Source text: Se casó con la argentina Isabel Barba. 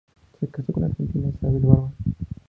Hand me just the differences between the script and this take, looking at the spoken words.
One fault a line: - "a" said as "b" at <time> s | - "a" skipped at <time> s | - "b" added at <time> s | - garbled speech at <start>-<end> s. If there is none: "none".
none